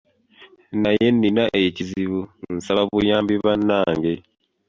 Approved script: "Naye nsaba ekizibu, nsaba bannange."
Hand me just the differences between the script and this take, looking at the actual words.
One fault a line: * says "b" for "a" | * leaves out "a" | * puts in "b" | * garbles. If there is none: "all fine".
* says "nnina" for "nsaba"
* puts in "buyambi"